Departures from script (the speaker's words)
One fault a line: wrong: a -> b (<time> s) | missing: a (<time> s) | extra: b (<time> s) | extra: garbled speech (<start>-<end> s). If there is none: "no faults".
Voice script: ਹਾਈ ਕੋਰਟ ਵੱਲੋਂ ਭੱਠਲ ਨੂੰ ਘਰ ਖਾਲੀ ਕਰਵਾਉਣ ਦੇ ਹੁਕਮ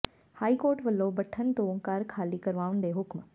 wrong: ਨੂੰ -> ਤੋਂ (1.5 s)